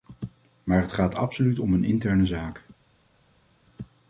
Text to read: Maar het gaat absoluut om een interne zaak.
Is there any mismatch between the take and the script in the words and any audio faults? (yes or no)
no